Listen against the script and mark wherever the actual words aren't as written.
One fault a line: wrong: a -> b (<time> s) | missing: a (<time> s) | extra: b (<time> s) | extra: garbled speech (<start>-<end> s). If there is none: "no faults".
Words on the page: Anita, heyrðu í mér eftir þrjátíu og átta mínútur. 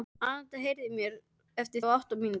missing: þrjátíu (1.9 s)